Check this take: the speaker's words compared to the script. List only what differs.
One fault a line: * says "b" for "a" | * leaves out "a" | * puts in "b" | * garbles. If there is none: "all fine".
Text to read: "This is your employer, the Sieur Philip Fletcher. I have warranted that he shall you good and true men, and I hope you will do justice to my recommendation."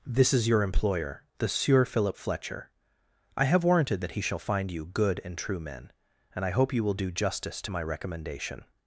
* puts in "find"